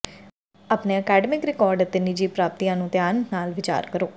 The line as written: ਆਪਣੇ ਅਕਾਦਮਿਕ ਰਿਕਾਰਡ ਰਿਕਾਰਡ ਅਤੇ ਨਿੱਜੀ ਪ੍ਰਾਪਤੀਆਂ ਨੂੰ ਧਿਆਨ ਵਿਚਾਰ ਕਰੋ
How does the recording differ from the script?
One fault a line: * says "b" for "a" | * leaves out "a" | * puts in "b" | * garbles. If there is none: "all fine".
* leaves out "ਰਿਕਾਰਡ"
* puts in "ਨਾਲ"